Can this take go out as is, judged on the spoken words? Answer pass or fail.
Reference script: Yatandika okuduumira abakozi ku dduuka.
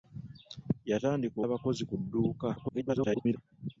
fail